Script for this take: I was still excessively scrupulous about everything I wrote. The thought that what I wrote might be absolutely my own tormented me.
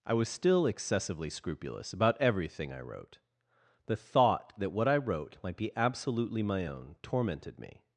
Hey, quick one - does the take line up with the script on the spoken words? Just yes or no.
yes